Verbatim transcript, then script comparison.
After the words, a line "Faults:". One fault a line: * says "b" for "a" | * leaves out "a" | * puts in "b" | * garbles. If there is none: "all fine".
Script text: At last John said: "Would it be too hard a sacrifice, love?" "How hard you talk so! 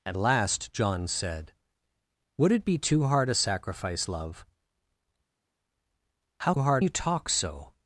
At last John said: "Would it be too hard a sacrifice, love?" "How hard you talk so!
Faults:
all fine